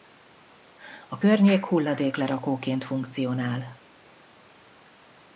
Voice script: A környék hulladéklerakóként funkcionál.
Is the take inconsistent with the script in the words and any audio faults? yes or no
no